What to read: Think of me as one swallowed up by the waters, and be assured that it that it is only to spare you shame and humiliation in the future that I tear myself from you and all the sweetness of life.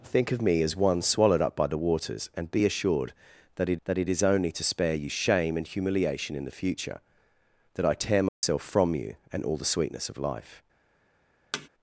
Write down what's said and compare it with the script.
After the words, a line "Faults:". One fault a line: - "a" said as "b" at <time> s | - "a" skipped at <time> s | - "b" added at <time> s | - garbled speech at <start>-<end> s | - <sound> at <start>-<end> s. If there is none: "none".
Think of me as one swallowed up by the waters, and be assured that it that it is only to spare you shame and humiliation in the future that I tear myself from you and all the sweetness of life.
Faults:
- dropout at 8.3-8.4 s
- thud at 11.5-11.7 s